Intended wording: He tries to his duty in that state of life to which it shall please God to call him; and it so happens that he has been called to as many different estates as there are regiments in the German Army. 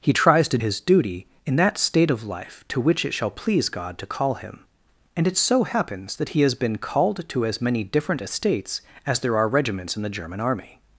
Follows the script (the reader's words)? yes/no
yes